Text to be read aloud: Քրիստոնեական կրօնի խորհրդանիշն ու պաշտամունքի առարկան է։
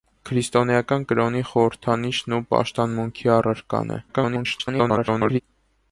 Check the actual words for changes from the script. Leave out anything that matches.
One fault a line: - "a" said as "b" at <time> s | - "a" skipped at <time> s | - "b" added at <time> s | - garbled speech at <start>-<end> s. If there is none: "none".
- garbled speech at 4.1-5.4 s